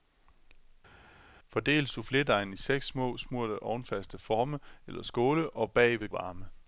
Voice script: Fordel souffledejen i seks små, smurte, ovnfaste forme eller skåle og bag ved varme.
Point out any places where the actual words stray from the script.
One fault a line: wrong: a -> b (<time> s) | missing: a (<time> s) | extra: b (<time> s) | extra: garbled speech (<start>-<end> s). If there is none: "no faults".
no faults